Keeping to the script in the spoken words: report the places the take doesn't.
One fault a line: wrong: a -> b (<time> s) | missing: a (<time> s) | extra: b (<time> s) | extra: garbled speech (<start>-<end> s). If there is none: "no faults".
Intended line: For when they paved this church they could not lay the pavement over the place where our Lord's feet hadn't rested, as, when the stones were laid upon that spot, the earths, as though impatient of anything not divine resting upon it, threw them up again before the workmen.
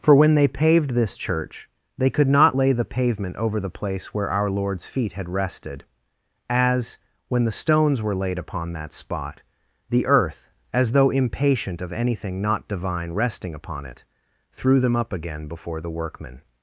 wrong: hadn't -> had (5.1 s)
wrong: earths -> earth (10.1 s)